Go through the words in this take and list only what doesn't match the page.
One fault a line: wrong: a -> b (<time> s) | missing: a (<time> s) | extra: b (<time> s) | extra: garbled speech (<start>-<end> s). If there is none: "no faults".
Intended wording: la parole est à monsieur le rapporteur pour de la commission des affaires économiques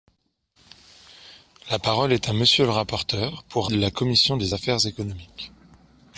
no faults